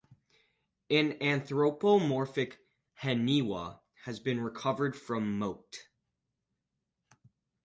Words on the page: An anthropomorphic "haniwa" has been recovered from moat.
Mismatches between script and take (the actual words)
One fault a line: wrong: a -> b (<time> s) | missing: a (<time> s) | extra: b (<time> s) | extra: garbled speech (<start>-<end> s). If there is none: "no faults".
no faults